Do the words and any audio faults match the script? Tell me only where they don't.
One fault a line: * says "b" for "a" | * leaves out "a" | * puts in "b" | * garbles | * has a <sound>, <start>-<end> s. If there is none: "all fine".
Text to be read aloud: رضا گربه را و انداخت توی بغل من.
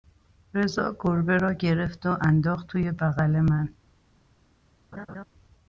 * puts in "گرفت"
* has a laugh, 4.9-5.2 s